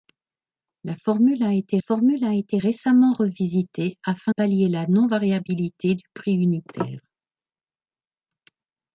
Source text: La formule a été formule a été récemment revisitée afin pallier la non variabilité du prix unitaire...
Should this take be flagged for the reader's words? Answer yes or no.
no